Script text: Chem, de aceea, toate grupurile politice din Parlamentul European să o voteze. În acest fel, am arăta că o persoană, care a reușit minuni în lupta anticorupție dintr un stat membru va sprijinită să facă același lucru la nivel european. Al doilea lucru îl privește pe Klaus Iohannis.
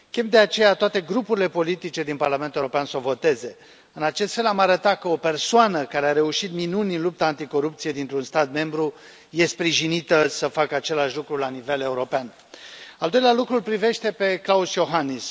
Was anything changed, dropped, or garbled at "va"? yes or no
yes